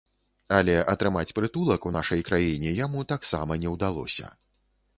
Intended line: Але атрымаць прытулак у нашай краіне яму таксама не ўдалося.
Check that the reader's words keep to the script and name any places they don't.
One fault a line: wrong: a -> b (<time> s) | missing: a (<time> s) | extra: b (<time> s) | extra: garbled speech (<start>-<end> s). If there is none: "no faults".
no faults